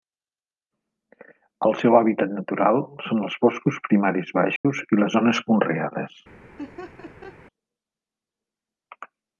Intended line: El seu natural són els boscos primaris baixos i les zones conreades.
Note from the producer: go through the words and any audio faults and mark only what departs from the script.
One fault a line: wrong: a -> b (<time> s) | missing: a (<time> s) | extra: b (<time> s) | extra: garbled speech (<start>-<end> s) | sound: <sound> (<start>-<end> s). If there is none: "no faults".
extra: hàbitat (2.0 s)
sound: dropout (4.6-4.6 s)
sound: laugh (6.6-7.4 s)